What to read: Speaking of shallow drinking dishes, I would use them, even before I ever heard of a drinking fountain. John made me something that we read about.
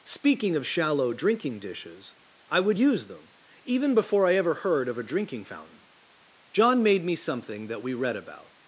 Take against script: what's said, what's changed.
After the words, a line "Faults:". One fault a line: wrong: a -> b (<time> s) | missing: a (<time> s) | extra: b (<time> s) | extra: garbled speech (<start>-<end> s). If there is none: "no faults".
Speaking of shallow drinking dishes, I would use them, even before I ever heard of a drinking fountain. John made me something that we read about.
Faults:
no faults